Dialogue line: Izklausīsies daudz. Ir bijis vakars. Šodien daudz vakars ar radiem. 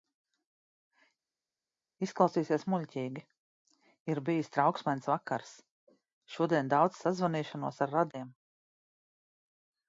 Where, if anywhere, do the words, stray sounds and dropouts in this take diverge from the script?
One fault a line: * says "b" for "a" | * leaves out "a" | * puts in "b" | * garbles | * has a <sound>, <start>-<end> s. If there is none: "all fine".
* says "muļķīgi" for "daudz"
* puts in "trauksmains"
* says "sazvanīšanos" for "vakars"